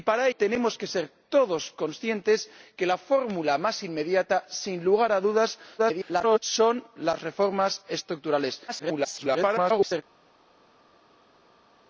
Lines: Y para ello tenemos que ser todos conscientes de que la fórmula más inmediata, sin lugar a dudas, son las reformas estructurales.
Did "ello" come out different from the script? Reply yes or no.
yes